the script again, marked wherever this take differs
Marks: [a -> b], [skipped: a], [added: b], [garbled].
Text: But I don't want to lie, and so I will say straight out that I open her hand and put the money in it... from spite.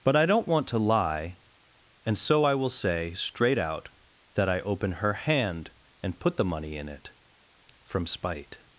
But I don't want to lie, and so I will say straight out that I open her hand and put the money in it... from spite.